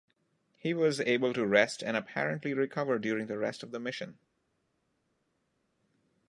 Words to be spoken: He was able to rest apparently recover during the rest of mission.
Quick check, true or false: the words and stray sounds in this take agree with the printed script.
false